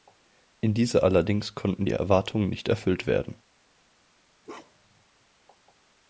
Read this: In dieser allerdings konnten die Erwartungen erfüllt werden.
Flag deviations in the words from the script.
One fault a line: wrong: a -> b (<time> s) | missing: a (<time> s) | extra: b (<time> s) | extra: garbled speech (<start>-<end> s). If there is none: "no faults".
extra: nicht (2.5 s)